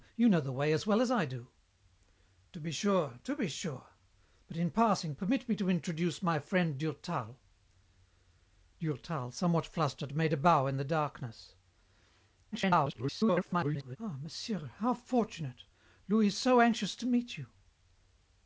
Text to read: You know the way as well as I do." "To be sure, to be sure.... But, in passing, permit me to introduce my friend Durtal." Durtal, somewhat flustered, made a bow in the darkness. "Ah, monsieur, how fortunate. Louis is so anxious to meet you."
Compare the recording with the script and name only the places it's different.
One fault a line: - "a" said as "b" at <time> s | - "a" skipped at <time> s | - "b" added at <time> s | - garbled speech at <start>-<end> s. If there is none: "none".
- garbled speech at 12.5-14.0 s